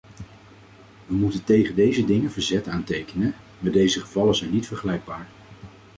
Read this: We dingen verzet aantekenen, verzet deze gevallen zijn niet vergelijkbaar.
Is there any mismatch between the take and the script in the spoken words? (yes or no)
yes